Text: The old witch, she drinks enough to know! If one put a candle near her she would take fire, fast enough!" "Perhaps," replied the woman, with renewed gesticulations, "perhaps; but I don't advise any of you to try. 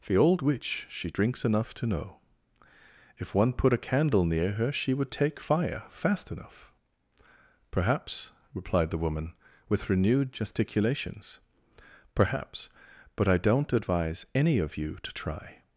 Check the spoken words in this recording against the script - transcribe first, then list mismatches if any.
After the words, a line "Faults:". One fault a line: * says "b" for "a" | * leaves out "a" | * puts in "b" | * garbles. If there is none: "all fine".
The old witch, she drinks enough to know! If one put a candle near her she would take fire, fast enough!" "Perhaps," replied the woman, with renewed gesticulations, "perhaps; but I don't advise any of you to try.
Faults:
all fine